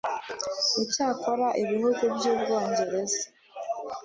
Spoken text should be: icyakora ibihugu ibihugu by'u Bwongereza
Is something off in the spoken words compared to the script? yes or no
yes